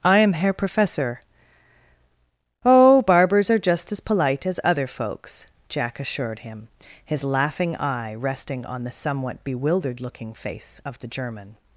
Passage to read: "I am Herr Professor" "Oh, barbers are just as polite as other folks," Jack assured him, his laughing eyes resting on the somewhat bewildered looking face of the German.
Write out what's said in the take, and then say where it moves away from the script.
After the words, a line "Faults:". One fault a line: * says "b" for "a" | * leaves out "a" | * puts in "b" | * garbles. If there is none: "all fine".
"I am Herr Professor" "Oh, barbers are just as polite as other folks," Jack assured him, his laughing eye resting on the somewhat bewildered looking face of the German.
Faults:
* says "eye" for "eyes"